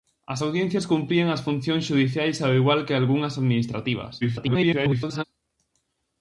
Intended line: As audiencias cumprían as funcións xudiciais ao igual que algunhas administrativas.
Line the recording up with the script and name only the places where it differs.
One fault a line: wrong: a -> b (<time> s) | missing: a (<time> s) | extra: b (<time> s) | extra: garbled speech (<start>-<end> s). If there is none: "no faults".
extra: garbled speech (4.2-5.2 s)